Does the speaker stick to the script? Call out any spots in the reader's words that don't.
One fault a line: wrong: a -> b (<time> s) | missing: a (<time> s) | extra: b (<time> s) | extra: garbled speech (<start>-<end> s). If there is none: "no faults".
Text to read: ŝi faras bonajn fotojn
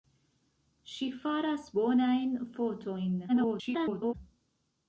extra: garbled speech (3.3-4.1 s)